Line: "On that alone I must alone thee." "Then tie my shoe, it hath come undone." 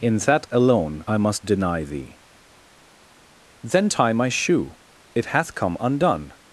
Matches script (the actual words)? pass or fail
fail